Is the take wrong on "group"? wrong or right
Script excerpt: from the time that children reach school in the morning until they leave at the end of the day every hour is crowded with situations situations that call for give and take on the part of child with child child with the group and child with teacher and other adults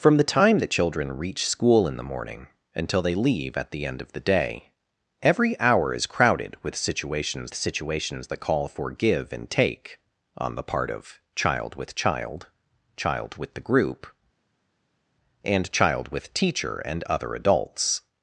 right